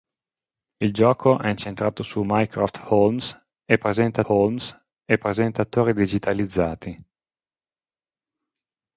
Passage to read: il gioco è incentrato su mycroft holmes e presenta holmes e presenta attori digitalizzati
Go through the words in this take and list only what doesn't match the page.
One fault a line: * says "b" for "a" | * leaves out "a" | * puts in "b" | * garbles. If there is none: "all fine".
all fine